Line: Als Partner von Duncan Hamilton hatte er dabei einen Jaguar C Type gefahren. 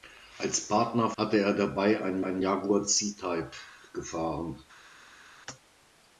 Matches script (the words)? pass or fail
fail